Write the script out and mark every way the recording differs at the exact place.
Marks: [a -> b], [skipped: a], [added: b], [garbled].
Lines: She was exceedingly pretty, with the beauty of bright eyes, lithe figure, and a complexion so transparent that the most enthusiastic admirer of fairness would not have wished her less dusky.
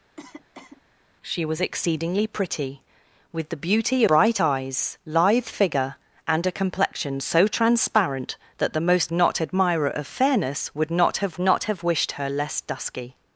She was exceedingly pretty, with the beauty [skipped: of] bright eyes, lithe figure, and a complexion so transparent that the most [enthusiastic -> not] admirer of fairness would not have [added: not have] wished her less dusky.